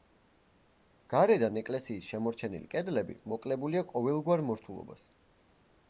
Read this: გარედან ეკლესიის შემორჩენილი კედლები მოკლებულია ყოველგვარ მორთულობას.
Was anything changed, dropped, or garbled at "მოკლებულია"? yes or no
no